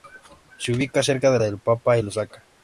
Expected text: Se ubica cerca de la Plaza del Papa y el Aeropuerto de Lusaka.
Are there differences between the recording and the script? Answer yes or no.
yes